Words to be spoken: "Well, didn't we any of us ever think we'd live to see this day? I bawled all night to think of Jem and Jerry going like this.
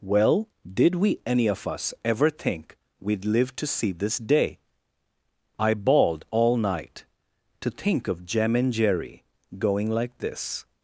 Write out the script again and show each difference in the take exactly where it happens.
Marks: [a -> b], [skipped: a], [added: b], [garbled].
"Well, [didn't -> did] we any of us ever think we'd live to see this day? I bawled all night to think of Jem and Jerry going like this.